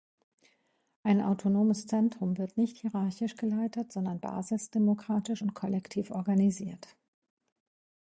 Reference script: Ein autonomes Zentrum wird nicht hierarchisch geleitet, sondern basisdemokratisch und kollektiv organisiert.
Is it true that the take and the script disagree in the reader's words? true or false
false